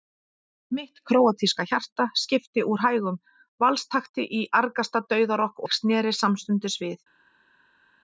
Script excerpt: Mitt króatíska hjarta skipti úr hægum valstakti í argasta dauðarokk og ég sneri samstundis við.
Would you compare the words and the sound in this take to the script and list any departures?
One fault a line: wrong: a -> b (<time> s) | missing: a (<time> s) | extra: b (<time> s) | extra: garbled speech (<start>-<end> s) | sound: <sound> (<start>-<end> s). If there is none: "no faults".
missing: og (5.7 s)